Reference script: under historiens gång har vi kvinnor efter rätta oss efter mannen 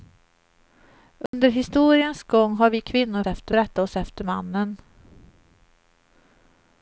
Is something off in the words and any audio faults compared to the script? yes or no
yes